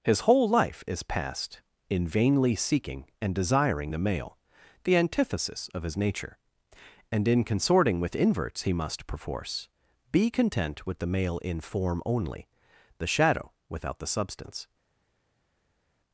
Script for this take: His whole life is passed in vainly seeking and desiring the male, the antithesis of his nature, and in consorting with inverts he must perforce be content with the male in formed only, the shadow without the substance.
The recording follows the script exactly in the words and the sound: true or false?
false